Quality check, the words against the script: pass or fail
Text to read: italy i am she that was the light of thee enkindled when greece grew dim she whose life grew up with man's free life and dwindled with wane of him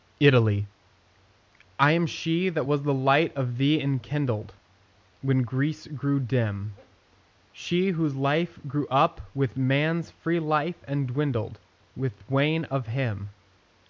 pass